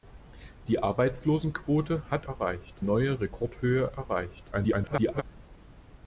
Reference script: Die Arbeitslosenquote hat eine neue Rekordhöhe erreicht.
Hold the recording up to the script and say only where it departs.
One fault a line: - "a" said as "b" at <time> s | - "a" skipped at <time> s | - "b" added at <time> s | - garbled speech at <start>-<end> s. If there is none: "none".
- "eine" said as "erreicht" at 2.3 s
- garbled speech at 4.5-5.2 s